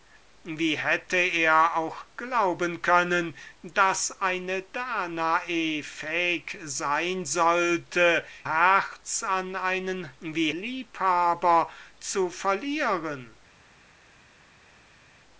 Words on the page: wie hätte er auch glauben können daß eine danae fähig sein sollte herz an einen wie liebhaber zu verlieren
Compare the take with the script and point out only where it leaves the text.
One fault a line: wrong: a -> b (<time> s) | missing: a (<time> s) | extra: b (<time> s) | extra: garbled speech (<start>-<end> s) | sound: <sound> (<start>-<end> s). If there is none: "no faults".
no faults